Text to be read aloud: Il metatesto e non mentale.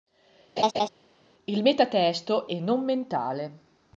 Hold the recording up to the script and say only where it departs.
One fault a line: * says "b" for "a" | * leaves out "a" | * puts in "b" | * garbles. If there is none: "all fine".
all fine